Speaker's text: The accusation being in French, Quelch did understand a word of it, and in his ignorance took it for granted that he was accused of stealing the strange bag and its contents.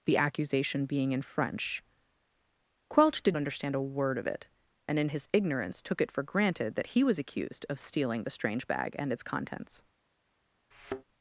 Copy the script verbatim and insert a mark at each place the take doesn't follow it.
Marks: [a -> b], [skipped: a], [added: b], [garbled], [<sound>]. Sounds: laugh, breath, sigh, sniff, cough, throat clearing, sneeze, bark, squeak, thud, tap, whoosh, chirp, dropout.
The accusation being in French, Quelch did understand a word of it, and in his ignorance took it for granted that he was accused of stealing the strange bag and its contents. [thud]